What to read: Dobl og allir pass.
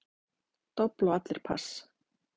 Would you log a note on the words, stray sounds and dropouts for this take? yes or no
no